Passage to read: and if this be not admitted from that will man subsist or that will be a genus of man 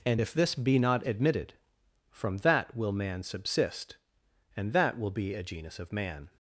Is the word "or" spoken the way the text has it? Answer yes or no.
no